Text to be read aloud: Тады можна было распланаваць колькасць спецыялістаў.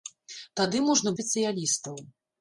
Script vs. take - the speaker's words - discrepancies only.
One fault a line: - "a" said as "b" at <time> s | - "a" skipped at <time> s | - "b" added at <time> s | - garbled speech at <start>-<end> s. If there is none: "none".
- "было распланаваць колькасць" skipped at 1.1 s